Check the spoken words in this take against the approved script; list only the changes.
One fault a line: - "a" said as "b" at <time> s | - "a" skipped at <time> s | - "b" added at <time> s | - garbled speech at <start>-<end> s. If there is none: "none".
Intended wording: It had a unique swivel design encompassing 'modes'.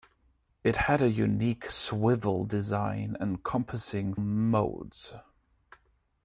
none